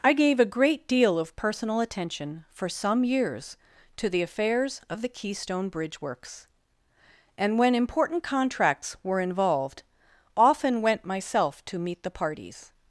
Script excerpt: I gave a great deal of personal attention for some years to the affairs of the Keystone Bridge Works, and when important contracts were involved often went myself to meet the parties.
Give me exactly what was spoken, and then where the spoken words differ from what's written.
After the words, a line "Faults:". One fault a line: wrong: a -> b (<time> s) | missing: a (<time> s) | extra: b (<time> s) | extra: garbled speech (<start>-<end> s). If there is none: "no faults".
I gave a great deal of personal attention for some years to the affairs of the Keystone Bridge Works, and when important contracts were involved often went myself to meet the parties.
Faults:
no faults